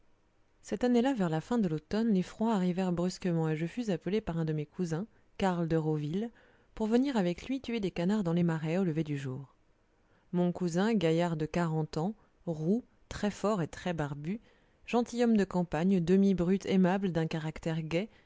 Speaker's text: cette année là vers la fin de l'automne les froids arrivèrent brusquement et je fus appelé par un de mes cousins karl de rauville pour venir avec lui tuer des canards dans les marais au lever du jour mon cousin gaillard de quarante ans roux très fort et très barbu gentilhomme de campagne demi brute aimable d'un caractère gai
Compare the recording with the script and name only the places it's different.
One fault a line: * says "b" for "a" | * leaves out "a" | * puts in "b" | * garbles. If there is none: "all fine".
all fine